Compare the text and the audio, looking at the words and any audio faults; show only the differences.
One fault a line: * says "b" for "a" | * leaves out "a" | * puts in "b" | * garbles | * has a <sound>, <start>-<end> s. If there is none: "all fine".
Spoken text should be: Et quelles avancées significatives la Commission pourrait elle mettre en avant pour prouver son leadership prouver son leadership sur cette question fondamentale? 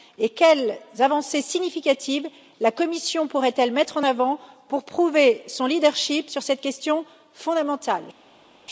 * leaves out "prouver son leadership"